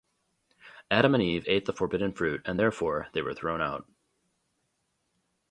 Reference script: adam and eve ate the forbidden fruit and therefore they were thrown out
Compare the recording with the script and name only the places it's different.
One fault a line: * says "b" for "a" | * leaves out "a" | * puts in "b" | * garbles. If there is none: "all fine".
all fine